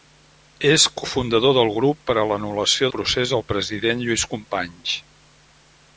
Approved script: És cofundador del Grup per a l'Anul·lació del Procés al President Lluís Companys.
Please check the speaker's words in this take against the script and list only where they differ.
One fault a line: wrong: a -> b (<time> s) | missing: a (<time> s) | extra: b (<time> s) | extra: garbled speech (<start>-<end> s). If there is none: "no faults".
missing: del (2.9 s)